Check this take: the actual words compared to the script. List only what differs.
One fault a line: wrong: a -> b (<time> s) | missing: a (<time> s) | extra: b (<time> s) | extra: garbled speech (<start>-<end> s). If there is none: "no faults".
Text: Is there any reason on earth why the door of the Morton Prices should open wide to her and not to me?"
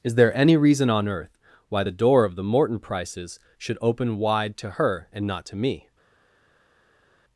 no faults